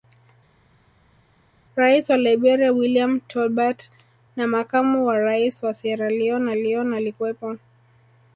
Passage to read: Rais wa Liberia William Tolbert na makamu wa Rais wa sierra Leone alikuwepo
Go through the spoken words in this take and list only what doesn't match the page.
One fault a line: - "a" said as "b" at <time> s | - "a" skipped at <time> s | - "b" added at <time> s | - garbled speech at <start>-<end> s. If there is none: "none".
- "Leone" added at 6.5 s